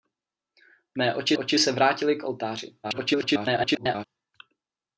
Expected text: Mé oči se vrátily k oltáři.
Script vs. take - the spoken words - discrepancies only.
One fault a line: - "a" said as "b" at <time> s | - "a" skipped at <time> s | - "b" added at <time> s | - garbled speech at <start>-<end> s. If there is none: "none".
- "oči" added at 1.4 s
- garbled speech at 2.8-4.1 s